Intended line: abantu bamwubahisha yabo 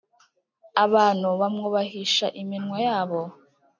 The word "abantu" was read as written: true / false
true